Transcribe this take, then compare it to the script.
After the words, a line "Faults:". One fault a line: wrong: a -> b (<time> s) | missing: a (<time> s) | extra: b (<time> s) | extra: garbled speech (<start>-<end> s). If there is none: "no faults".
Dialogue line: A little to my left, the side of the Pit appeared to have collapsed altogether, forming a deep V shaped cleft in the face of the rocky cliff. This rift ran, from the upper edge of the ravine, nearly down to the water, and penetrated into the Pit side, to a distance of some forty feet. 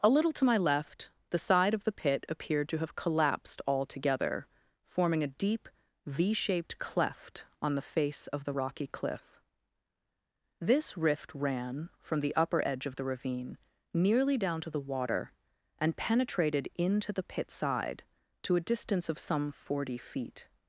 A little to my left, the side of the Pit appeared to have collapsed altogether, forming a deep V shaped cleft on the face of the rocky cliff. This rift ran, from the upper edge of the ravine, nearly down to the water, and penetrated into the Pit side, to a distance of some forty feet.
Faults:
wrong: in -> on (7.6 s)